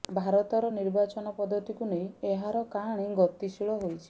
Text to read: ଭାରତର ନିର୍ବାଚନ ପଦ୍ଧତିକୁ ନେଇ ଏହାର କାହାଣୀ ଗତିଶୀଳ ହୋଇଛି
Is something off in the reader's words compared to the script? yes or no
no